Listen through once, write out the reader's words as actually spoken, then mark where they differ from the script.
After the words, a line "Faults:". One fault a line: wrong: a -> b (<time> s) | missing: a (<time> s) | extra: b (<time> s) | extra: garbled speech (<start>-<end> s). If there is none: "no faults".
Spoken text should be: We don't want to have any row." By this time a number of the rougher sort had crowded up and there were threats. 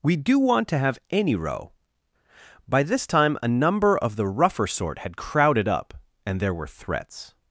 We do want to have any row." By this time a number of the rougher sort had crowded up and there were threats.
Faults:
wrong: don't -> do (0.1 s)